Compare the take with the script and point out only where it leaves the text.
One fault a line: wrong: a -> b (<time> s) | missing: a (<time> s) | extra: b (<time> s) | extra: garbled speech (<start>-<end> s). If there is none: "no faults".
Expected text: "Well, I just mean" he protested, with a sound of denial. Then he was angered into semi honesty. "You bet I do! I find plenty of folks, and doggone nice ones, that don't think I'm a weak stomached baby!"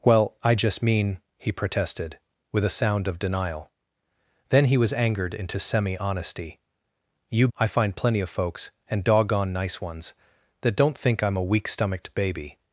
missing: bet I do (7.5 s)